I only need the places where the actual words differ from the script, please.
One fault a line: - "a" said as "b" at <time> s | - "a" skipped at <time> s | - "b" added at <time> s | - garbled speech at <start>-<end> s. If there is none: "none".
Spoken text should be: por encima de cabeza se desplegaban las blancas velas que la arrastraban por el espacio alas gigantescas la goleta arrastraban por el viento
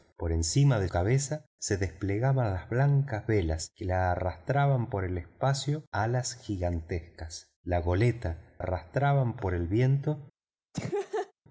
none